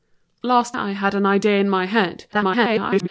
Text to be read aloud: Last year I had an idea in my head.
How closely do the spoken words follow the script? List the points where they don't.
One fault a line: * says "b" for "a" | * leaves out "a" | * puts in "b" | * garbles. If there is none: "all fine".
* leaves out "year"
* garbles